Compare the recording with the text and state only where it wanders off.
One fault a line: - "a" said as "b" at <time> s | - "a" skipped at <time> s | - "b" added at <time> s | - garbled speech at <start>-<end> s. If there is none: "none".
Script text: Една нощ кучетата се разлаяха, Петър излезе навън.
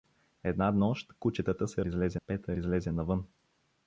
- "разлаяха" said as "излезе" at 1.9 s